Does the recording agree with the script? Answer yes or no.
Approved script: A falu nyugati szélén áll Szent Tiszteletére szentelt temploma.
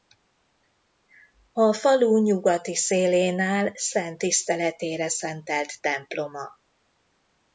yes